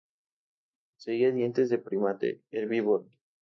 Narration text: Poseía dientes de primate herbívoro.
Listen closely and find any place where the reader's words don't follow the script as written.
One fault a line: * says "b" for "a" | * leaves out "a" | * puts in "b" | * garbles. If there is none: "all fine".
all fine